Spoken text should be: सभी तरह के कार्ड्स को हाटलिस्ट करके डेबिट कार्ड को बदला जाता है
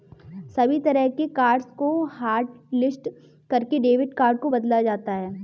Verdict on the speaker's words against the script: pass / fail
pass